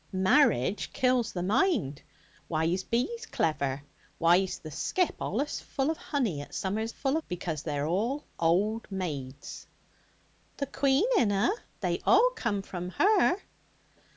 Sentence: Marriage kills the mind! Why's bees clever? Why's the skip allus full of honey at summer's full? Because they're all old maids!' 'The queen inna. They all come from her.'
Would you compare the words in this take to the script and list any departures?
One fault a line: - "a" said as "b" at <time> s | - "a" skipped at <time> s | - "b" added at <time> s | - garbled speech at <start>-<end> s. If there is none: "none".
none